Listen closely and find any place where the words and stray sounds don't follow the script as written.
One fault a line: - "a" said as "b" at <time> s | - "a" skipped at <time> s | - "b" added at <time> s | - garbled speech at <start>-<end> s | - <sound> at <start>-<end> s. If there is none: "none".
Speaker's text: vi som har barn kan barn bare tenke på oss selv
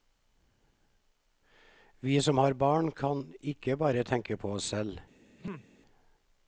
- "barn" said as "ikke" at 3.4 s
- throat clearing at 5.4-5.7 s